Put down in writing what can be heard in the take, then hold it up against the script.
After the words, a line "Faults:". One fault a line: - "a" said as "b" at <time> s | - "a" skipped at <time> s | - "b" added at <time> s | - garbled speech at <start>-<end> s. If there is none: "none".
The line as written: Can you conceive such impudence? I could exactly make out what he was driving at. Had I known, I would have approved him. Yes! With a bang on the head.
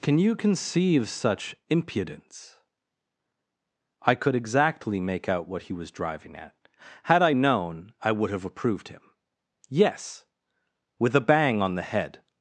Can you conceive such impudence? I could exactly make out what he was driving at. Had I known, I would have approved him. Yes! With a bang on the head.
Faults:
none